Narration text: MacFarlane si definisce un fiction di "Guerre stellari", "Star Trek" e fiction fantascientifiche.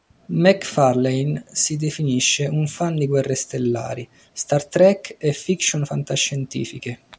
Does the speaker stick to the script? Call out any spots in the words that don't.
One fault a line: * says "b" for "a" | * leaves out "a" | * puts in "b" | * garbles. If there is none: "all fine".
* says "fan" for "fiction"